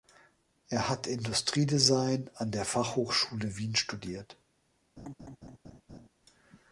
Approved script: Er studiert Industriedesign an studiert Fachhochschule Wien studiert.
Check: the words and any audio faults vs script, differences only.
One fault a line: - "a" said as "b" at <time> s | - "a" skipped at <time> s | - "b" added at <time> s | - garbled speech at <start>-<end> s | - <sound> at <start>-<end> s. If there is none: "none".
- "studiert" said as "hat" at 0.9 s
- "studiert" said as "der" at 2.5 s
- laugh at 5.0-6.1 s